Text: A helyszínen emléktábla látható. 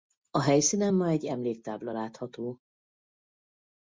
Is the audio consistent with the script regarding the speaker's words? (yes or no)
no